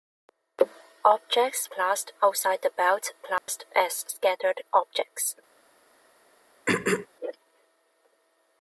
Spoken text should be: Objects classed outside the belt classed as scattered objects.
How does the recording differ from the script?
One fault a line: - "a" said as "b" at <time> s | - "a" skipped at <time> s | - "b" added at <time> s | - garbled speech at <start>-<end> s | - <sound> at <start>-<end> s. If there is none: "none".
- dropout at 3.4-3.5 s
- throat clearing at 6.7-7.1 s